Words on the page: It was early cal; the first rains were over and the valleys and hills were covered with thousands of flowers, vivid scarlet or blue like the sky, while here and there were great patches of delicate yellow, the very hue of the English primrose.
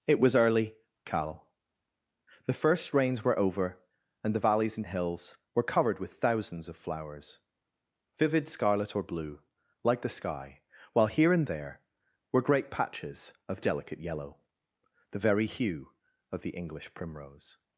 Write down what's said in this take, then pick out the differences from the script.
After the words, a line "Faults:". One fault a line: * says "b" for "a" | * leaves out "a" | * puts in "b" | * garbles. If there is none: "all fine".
It was early cal; the first rains were over and the valleys and hills were covered with thousands of flowers, vivid scarlet or blue like the sky, while here and there were great patches of delicate yellow, the very hue of the English primrose.
Faults:
all fine